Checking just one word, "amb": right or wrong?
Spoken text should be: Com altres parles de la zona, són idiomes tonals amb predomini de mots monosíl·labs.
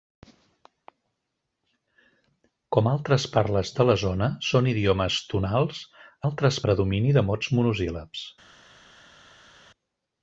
wrong